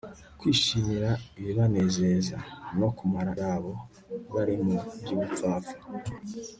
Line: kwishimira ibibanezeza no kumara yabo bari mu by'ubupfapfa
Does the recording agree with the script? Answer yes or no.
yes